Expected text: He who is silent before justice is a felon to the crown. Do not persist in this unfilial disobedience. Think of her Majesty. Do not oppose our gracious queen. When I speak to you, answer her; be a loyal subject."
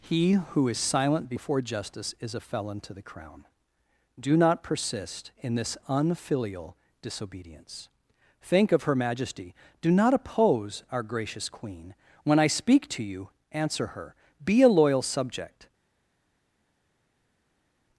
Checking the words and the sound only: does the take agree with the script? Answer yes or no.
yes